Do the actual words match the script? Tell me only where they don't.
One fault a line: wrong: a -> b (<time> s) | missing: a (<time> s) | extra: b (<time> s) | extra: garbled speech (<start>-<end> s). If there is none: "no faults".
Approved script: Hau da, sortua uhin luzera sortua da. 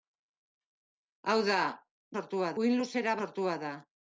no faults